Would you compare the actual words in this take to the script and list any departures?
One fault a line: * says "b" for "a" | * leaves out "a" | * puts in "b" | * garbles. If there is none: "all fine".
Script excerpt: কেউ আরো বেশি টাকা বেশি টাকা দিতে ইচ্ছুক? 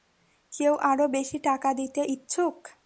* leaves out "বেশি টাকা"